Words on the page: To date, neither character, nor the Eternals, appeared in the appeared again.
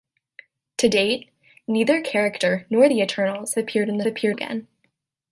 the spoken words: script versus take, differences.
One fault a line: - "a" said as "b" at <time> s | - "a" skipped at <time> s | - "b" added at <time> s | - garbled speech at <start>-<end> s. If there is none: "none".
none